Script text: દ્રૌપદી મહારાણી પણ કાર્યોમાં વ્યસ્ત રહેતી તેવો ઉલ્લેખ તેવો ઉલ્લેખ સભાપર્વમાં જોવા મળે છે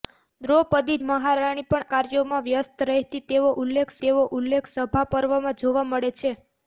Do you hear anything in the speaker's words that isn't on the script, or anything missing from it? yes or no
no